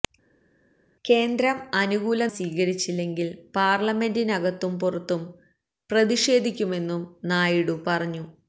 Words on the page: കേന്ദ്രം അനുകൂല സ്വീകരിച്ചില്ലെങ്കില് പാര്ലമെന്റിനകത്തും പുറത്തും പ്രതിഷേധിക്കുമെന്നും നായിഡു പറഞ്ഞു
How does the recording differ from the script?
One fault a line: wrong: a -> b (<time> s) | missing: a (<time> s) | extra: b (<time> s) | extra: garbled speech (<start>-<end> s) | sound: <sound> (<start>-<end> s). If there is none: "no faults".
no faults